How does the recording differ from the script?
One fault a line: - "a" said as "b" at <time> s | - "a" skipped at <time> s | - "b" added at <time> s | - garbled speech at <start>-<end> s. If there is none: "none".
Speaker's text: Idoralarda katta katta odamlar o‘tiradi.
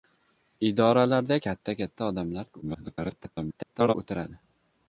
- garbled speech at 2.6-3.9 s